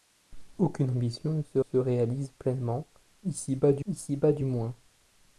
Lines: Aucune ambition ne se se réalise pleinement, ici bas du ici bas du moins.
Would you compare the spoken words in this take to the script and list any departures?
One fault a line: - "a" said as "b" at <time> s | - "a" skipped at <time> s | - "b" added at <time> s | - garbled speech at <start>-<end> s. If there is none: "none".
none